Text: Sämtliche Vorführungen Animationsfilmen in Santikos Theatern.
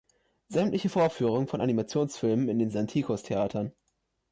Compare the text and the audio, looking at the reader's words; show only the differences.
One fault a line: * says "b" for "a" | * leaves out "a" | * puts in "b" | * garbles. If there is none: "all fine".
* puts in "von"
* puts in "den"